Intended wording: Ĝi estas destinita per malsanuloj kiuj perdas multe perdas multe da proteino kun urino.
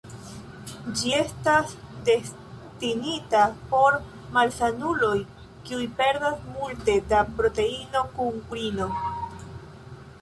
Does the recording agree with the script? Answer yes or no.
no